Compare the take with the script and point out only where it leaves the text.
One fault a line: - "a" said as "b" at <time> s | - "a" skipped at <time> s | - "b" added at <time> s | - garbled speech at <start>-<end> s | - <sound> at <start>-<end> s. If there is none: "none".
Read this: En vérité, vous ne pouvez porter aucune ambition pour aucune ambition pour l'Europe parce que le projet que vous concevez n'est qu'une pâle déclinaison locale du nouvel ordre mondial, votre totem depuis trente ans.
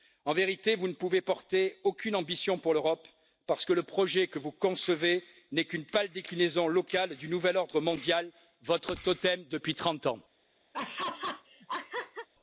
- "aucune ambition pour" skipped at 2.7 s
- laugh at 10.7-12.3 s